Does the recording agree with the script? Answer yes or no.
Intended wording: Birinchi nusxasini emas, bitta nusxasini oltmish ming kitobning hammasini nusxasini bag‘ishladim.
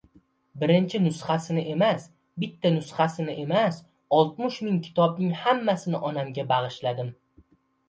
no